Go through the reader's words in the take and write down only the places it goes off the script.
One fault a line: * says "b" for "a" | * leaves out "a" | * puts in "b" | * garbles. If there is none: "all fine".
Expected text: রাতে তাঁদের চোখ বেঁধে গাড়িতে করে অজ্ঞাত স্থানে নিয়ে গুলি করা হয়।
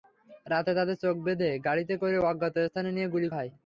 * leaves out "করা"